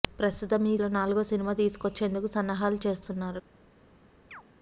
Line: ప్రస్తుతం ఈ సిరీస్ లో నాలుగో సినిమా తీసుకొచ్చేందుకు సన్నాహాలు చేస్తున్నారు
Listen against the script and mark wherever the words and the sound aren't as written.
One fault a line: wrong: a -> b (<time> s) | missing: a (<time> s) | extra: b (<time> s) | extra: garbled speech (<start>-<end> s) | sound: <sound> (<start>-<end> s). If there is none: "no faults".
missing: సిరీస్ (0.8 s)
sound: chirp (4.3-4.4 s)